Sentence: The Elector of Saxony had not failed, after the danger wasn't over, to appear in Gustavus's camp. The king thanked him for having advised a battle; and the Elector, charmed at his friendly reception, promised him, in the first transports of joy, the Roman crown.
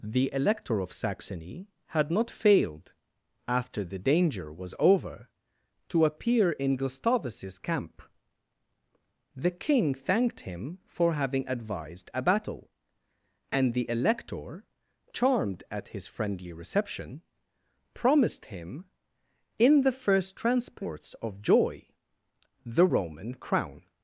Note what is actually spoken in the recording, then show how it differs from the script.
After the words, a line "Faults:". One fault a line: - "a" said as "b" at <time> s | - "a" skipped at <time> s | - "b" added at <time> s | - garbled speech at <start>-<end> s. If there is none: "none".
The Elector of Saxony had not failed, after the danger was over, to appear in Gustavus's camp. The king thanked him for having advised a battle; and the Elector, charmed at his friendly reception, promised him, in the first transports of joy, the Roman crown.
Faults:
- "wasn't" said as "was" at 4.5 s